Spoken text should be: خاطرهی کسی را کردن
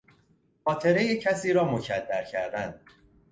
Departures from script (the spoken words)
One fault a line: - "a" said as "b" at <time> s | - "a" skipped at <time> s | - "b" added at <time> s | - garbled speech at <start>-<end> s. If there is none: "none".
- "مکدر" added at 1.6 s